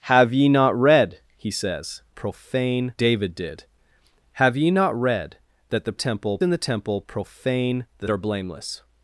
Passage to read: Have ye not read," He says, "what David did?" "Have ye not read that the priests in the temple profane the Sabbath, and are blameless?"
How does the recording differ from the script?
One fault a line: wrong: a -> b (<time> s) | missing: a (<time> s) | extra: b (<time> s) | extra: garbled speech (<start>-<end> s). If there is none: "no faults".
wrong: what -> profane (2.1 s)
wrong: priests -> temple (5.9 s)
missing: Sabbath and (8.1 s)